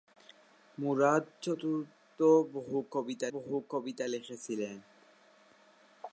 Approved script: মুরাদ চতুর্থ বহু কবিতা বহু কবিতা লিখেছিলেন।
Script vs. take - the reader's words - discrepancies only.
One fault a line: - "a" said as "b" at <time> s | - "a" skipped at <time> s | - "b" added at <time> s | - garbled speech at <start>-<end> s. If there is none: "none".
none